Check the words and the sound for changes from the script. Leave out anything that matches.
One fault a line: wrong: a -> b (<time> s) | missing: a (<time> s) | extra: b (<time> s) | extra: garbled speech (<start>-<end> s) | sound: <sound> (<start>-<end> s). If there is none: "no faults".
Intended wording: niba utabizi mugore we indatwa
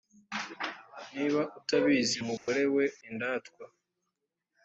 sound: dropout (2.4-2.5 s)